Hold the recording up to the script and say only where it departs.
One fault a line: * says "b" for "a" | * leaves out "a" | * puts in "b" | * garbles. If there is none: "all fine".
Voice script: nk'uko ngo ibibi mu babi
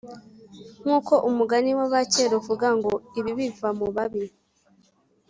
* puts in "umugani w'abakera uvuga"
* puts in "biva"